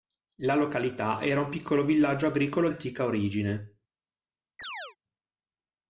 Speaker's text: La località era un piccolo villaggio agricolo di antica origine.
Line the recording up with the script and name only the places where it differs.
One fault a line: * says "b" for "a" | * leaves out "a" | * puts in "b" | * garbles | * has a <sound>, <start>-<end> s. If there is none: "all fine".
* leaves out "di"
* has a chirp, 4.6-5.0 s